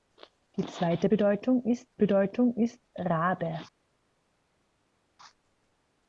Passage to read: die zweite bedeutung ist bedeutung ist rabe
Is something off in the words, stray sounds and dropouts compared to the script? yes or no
no